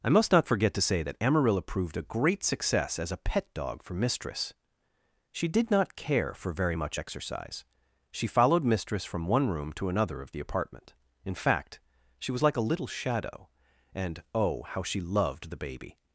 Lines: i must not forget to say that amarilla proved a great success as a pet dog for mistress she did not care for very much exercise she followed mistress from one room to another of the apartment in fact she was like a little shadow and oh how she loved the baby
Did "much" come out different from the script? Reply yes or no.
no